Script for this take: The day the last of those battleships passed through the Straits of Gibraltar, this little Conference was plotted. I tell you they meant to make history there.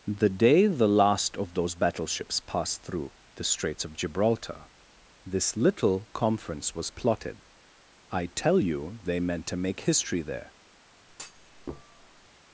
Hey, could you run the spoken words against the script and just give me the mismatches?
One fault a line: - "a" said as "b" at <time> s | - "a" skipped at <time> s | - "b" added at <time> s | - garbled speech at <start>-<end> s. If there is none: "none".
none